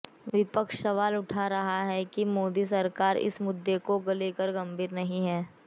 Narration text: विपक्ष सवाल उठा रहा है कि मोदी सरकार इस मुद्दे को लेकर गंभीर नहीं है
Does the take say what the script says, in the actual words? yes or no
yes